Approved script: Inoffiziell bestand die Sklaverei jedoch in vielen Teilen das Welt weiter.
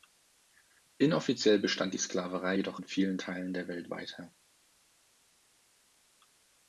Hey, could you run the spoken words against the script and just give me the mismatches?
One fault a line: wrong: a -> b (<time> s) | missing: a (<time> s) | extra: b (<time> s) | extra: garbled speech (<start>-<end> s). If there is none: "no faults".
wrong: das -> der (3.5 s)